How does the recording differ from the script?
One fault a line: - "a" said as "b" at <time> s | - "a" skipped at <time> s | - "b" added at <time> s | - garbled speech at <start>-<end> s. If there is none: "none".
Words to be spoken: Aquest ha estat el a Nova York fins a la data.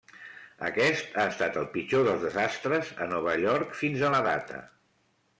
- "pitjor dels desastres" added at 1.7 s